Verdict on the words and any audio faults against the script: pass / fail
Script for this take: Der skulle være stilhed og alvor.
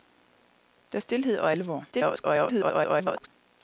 fail